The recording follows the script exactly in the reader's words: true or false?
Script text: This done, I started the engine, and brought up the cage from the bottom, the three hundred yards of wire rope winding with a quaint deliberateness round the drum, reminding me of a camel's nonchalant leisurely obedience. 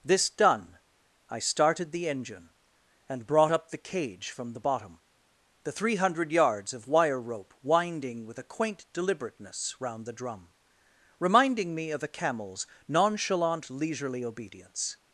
true